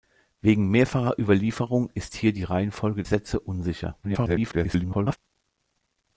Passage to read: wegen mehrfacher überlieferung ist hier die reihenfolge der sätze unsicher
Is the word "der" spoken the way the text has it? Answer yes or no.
no